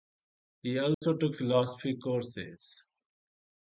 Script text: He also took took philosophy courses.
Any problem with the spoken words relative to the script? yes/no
yes